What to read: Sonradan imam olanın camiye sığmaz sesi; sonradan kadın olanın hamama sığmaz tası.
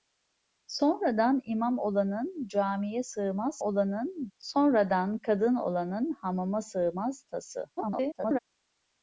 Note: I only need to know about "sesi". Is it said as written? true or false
false